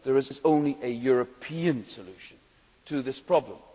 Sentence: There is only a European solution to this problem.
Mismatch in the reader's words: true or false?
true